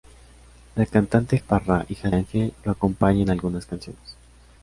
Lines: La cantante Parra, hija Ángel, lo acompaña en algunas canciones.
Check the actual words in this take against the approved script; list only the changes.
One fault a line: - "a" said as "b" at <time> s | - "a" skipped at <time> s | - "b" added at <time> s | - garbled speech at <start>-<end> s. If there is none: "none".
none